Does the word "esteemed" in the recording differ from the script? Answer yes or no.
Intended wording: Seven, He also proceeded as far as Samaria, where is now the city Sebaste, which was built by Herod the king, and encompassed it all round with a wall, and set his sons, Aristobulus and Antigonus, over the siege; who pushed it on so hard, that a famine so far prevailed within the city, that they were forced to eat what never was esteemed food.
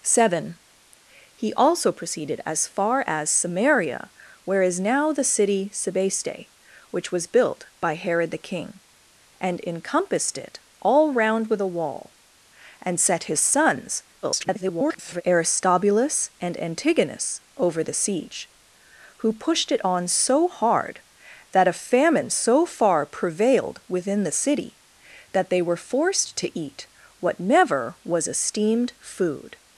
no